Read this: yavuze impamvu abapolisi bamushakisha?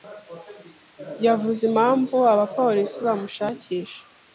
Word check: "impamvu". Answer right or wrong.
right